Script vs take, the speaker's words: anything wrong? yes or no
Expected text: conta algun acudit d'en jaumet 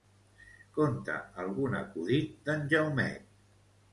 no